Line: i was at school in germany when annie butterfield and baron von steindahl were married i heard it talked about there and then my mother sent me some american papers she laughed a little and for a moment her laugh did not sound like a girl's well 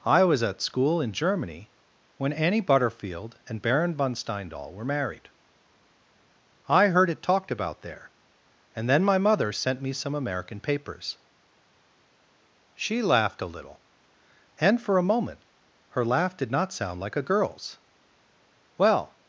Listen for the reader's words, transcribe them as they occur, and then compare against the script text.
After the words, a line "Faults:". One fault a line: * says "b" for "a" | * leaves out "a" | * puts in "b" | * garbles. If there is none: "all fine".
i was at school in germany when annie butterfield and baron von steindahl were married i heard it talked about there and then my mother sent me some american papers she laughed a little and for a moment her laugh did not sound like a girl's well
Faults:
all fine